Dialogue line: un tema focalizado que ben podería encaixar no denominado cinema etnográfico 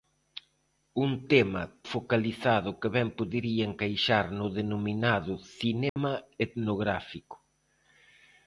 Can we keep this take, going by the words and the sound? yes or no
no